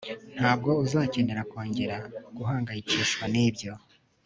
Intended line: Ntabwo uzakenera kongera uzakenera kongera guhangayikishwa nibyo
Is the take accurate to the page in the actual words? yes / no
no